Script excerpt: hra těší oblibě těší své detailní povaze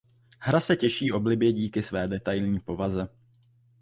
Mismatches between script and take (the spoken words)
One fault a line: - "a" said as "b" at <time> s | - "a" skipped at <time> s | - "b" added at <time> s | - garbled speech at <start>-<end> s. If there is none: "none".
- "se" added at 0.6 s
- "těší" said as "díky" at 1.5 s